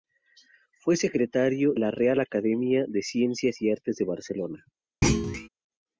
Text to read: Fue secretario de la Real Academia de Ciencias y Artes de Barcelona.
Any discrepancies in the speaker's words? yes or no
yes